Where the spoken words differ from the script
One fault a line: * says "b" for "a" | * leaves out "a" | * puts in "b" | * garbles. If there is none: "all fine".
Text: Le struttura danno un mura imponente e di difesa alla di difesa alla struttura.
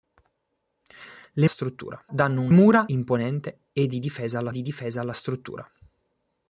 all fine